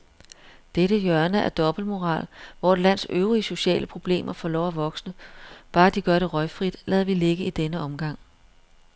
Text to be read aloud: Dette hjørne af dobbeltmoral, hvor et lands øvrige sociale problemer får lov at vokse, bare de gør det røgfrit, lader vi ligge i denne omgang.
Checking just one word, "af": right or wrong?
right